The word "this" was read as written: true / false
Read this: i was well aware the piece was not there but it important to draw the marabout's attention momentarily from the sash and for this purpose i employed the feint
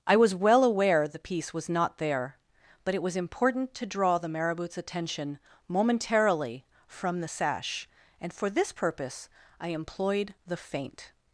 true